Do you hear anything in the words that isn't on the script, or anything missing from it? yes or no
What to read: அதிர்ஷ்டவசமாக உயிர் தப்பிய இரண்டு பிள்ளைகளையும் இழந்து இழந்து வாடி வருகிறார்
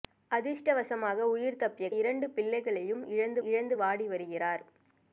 no